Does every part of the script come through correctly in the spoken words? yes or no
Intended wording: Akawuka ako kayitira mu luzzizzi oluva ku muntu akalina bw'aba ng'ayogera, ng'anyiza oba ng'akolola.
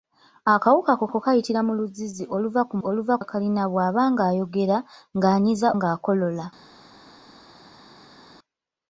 no